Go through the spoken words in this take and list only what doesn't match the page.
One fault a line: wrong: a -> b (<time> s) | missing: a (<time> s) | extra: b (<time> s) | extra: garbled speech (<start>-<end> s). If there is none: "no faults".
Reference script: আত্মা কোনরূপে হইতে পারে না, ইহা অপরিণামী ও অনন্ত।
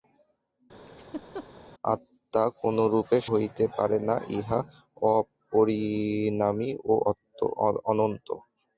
no faults